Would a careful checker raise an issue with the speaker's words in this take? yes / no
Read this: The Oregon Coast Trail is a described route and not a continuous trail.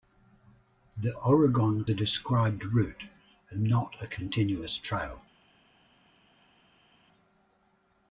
yes